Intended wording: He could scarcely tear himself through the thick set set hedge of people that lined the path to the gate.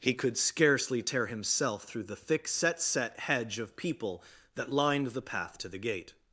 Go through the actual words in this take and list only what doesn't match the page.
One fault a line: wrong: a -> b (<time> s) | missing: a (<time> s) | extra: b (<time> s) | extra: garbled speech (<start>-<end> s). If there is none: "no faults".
no faults